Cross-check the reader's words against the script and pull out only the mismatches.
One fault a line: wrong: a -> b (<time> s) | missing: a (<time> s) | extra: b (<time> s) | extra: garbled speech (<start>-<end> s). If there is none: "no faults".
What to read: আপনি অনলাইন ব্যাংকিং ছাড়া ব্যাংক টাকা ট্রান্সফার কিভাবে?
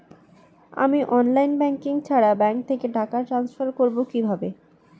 wrong: আপনি -> আমি (0.8 s)
extra: থেকে (2.7 s)
extra: করবো (3.7 s)